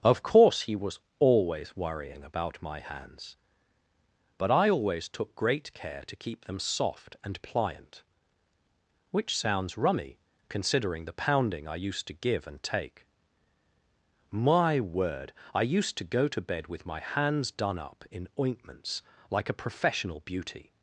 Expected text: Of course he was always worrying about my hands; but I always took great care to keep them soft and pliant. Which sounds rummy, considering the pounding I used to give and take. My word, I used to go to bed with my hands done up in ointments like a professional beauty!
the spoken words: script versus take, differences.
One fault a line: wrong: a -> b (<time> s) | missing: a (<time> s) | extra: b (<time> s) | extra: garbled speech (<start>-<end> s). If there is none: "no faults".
no faults